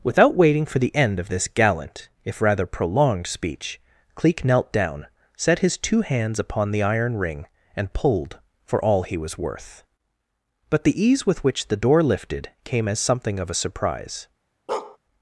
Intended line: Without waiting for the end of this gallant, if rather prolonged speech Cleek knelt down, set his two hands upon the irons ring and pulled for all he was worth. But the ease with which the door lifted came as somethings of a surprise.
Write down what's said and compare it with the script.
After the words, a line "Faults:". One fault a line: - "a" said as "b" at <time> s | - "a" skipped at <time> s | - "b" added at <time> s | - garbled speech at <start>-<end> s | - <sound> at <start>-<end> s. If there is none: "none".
Without waiting for the end of this gallant, if rather prolonged speech Cleek knelt down, set his two hands upon the iron ring and pulled for all he was worth. But the ease with which the door lifted came as something of a surprise.
Faults:
- "irons" said as "iron" at 6.8 s
- "somethings" said as "something" at 13.0 s
- bark at 14.7-15.0 s